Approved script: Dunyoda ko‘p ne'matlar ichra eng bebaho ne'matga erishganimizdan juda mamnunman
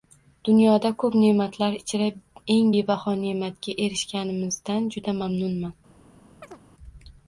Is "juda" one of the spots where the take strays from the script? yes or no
no